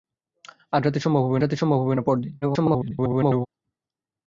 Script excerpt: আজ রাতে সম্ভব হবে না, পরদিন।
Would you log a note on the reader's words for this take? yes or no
yes